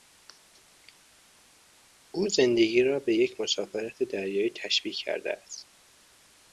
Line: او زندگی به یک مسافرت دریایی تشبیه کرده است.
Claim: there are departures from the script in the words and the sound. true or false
true